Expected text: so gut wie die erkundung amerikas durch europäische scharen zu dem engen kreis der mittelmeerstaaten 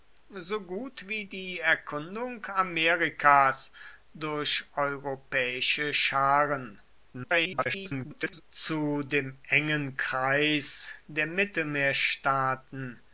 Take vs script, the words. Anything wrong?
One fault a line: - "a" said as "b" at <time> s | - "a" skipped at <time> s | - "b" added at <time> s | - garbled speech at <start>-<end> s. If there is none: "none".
- garbled speech at 7.1-8.4 s